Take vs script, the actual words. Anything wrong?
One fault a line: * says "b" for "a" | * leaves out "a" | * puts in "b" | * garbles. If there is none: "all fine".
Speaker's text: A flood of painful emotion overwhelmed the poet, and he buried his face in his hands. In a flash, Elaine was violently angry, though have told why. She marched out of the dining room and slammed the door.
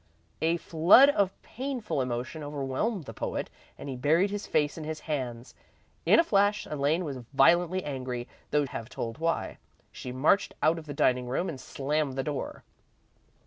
all fine